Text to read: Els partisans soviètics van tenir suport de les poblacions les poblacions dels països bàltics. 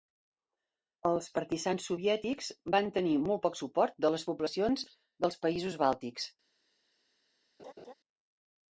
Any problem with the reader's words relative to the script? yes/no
yes